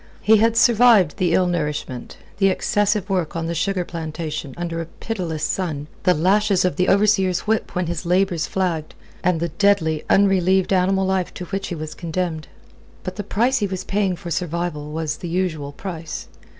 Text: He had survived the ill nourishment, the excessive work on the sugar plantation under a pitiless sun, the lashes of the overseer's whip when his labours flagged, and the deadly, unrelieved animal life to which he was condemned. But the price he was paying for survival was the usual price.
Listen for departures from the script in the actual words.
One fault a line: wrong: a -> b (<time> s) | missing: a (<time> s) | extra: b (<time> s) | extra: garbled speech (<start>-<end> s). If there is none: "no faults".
no faults